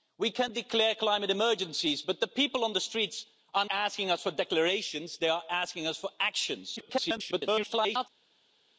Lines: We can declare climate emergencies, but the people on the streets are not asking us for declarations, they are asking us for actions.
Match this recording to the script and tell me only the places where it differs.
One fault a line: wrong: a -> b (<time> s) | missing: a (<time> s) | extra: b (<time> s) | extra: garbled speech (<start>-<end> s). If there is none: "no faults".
missing: not (3.6 s)
extra: garbled speech (6.8-8.1 s)